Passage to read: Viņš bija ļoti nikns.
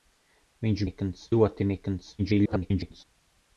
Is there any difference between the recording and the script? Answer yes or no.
yes